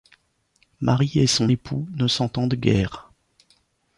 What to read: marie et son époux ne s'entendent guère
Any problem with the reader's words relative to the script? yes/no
no